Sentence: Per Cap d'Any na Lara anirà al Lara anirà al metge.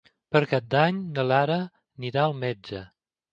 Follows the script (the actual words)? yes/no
no